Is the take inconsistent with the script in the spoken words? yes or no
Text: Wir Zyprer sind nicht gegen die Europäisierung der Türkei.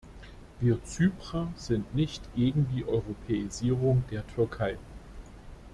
no